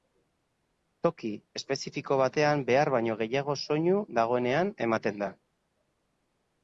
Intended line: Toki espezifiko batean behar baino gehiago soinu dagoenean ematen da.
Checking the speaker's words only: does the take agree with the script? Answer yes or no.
yes